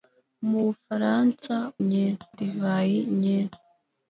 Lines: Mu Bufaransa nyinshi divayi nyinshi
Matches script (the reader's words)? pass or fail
pass